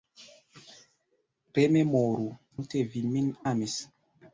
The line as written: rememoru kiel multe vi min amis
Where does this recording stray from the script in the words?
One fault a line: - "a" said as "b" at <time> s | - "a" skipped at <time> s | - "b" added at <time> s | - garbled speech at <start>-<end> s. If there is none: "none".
- "kiel" skipped at 2.2 s